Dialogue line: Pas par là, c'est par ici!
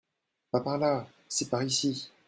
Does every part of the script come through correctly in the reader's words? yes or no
yes